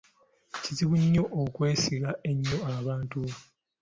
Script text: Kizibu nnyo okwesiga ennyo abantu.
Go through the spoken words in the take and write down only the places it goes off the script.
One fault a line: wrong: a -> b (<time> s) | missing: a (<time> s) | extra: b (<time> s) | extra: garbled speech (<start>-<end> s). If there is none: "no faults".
no faults